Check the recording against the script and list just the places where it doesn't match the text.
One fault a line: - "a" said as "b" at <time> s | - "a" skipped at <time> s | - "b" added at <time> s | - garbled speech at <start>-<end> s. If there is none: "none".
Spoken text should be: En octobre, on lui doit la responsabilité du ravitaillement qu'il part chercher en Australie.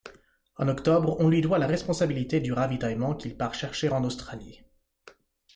none